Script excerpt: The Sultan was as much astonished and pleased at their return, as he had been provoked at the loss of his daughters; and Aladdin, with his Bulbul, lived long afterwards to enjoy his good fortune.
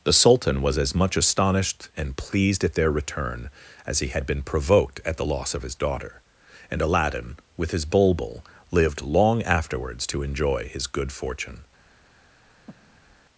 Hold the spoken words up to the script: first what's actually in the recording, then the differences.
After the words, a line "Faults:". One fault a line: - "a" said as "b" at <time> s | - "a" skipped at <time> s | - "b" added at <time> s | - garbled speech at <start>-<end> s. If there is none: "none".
The Sultan was as much astonished and pleased at their return, as he had been provoked at the loss of his daughter; and Aladdin, with his Bulbul, lived long afterwards to enjoy his good fortune.
Faults:
- "daughters" said as "daughter" at 5.8 s